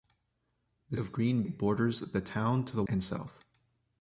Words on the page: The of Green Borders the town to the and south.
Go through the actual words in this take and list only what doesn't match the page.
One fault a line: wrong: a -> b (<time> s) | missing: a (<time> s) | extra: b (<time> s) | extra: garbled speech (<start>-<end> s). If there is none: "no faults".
no faults